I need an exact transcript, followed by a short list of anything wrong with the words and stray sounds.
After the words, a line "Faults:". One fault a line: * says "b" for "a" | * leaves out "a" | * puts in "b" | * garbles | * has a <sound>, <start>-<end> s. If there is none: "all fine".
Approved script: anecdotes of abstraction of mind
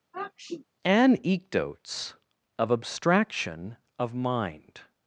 anecdotes of abstraction of mind
Faults:
* has a sniff, 0.1-0.7 s